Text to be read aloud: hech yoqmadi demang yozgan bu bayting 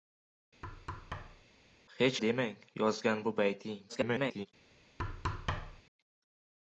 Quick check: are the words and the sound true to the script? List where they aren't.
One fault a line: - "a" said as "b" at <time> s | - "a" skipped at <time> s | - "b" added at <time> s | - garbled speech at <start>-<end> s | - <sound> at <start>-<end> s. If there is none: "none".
- thud at 0.6-1.5 s
- "yoqmadi" skipped at 2.2 s
- garbled speech at 3.9-4.5 s
- thud at 5.0-5.8 s